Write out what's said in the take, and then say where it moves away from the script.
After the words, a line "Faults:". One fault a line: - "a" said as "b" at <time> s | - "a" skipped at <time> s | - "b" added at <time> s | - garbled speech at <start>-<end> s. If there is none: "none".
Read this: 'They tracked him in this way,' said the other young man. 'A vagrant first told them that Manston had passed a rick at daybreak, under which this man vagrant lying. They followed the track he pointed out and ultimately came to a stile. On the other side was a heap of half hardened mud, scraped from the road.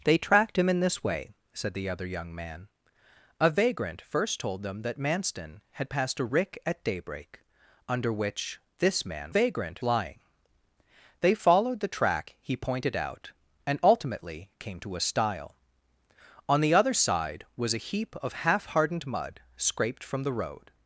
'They tracked him in this way,' said the other young man. 'A vagrant first told them that Manston had passed a rick at daybreak, under which this man vagrant lying. They followed the track he pointed out and ultimately came to a stile. On the other side was a heap of half hardened mud, scraped from the road.
Faults:
none